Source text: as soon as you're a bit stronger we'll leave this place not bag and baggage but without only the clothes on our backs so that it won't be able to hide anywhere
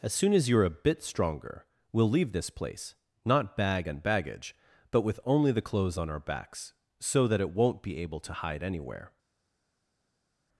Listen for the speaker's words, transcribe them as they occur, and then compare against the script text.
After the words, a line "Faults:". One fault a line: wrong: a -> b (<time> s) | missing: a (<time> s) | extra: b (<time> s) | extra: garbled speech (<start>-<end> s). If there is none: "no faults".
as soon as you're a bit stronger we'll leave this place not bag and baggage but with only the clothes on our backs so that it won't be able to hide anywhere
Faults:
wrong: without -> with (5.0 s)